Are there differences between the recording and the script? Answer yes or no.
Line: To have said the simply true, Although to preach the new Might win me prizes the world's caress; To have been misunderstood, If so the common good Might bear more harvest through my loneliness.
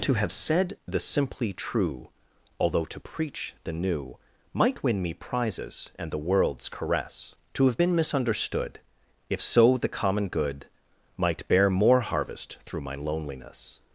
yes